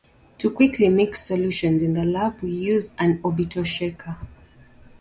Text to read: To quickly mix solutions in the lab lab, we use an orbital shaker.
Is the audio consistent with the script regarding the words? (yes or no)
no